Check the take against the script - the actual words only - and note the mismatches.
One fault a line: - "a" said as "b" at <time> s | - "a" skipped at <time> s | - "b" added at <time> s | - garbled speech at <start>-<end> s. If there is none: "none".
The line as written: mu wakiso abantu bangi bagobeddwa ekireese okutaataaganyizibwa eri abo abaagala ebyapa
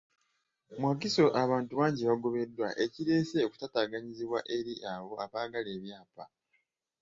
none